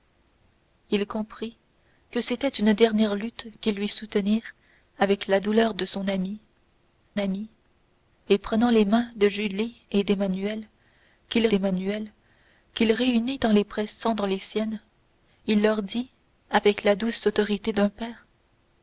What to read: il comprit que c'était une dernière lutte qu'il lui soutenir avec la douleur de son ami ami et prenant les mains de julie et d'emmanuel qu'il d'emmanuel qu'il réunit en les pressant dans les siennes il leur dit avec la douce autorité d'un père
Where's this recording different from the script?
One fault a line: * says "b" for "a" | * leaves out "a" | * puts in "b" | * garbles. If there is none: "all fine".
all fine